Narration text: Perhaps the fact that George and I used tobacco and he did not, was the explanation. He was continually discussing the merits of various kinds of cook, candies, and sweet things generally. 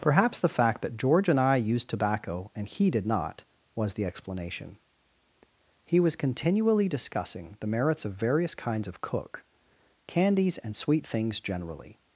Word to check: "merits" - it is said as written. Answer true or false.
true